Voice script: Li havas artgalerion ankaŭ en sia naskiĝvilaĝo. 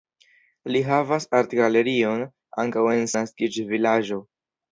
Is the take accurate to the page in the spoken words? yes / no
no